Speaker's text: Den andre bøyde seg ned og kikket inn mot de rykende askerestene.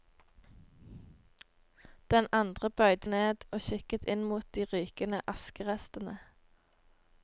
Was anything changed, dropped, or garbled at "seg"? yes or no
yes